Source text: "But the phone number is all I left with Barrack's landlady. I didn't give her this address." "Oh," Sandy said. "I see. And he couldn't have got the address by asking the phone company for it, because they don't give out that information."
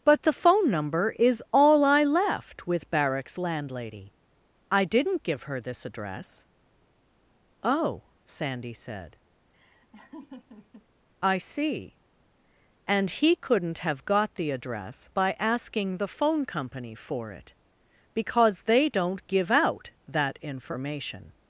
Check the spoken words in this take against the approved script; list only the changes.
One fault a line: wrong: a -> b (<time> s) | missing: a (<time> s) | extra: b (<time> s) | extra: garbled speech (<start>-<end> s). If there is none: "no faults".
no faults